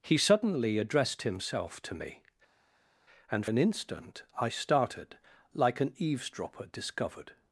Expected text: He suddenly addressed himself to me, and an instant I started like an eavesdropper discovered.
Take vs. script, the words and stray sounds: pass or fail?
pass